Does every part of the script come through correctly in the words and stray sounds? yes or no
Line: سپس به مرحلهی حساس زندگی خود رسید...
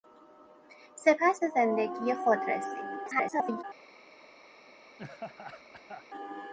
no